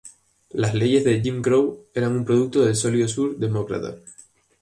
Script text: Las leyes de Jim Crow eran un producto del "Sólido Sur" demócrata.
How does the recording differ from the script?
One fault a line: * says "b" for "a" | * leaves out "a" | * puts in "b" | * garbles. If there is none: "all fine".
all fine